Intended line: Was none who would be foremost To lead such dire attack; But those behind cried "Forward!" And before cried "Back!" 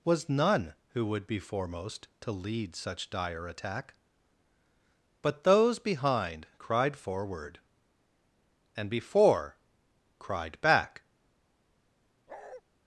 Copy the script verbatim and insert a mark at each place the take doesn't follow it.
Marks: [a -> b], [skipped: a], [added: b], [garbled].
Was none who would be foremost To lead such dire attack; But those behind cried "Forward!" And before cried "Back!"